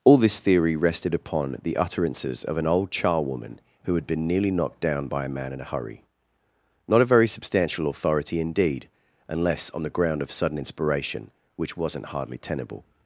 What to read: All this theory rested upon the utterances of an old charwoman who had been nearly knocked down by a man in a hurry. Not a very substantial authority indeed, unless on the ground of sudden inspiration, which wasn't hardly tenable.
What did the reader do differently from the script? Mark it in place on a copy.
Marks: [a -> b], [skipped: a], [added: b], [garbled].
All this theory rested upon the utterances of an old charwoman who had been nearly knocked down by a man in a hurry. Not a very substantial authority indeed, unless on the ground of sudden inspiration, which wasn't hardly tenable.